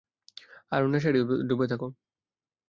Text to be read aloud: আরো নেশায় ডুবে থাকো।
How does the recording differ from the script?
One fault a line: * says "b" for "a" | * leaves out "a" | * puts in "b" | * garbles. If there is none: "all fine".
all fine